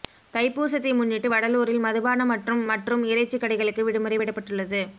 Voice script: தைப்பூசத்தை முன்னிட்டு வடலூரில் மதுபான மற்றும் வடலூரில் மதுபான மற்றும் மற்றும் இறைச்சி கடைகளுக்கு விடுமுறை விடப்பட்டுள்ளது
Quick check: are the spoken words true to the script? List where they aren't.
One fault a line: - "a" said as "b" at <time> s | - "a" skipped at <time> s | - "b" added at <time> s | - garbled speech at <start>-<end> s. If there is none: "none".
- "வடலூரில் மதுபான மற்றும்" skipped at 2.6 s